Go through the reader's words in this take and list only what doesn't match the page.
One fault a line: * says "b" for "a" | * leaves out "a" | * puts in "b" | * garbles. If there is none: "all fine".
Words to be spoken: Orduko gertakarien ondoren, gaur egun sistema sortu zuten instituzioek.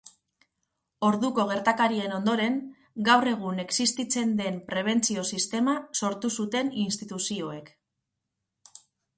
* puts in "existitzen den prebentzio"